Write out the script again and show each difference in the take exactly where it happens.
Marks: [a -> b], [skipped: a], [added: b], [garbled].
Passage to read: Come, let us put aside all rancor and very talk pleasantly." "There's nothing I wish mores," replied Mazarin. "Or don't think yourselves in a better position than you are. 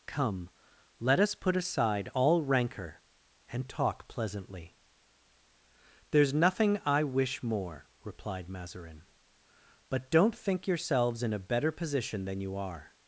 Come, let us put aside all rancor and [skipped: very] talk pleasantly." "There's nothing I wish [mores," -> more] replied Mazarin. ["Or -> But] don't think yourselves in a better position than you are.